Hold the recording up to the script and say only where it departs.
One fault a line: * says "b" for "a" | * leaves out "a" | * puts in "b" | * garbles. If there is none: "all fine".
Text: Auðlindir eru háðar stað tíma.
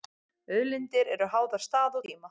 all fine